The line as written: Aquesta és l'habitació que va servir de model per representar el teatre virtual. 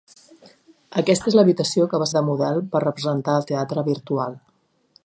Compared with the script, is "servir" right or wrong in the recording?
wrong